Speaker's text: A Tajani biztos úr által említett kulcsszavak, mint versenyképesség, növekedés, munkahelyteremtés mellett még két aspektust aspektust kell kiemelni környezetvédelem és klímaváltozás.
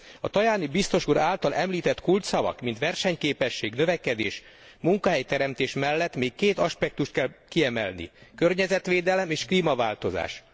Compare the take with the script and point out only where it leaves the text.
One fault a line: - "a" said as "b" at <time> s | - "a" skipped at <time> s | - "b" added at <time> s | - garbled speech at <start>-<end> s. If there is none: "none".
- "aspektust" skipped at 7.1 s